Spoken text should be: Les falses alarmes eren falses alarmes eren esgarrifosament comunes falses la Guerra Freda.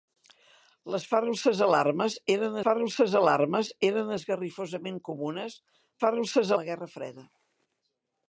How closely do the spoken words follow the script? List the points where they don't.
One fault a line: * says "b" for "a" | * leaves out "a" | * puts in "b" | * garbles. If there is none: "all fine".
all fine